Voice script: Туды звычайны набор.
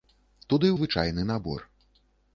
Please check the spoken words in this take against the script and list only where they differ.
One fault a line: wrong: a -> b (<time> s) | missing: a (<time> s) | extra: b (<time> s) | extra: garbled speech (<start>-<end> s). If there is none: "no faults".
no faults